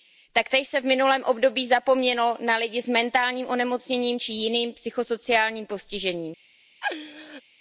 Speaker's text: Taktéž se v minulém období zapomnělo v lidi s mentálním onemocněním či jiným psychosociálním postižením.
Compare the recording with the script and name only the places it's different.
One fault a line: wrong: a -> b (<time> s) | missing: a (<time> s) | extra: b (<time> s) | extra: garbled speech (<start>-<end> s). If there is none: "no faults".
wrong: v -> na (2.4 s)